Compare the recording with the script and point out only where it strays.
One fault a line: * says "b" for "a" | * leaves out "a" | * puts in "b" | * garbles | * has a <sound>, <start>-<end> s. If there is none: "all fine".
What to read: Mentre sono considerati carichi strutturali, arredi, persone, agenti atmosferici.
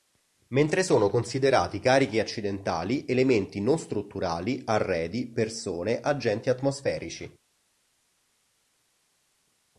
* puts in "accidentali elementi non"